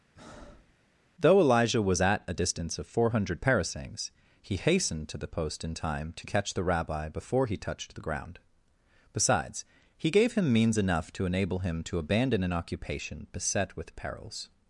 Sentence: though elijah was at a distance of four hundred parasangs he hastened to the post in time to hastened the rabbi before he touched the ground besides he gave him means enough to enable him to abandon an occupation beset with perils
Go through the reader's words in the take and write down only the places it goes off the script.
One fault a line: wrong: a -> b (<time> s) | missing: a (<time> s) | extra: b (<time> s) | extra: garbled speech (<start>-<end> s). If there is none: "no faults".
wrong: hastened -> catch (6.3 s)